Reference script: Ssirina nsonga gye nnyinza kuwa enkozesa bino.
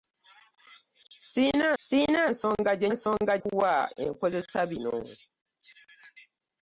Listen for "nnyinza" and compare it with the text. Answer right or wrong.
wrong